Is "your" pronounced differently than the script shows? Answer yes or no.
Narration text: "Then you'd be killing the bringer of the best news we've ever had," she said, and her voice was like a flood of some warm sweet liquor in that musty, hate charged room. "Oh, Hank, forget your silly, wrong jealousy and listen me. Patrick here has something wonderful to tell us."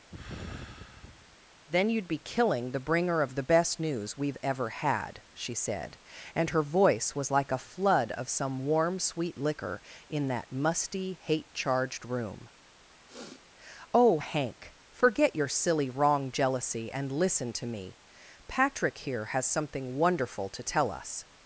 no